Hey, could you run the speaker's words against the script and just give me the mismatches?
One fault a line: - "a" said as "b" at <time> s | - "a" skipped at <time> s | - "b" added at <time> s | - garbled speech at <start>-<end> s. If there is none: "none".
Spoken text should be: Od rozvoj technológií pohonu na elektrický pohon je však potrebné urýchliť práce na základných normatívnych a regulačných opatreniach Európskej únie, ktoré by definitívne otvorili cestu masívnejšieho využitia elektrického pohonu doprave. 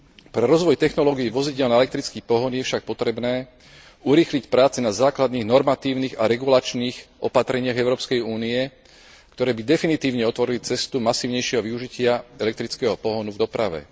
- "Od" said as "Pre" at 0.3 s
- "pohonu" said as "vozidiel" at 1.3 s
- "v" added at 13.3 s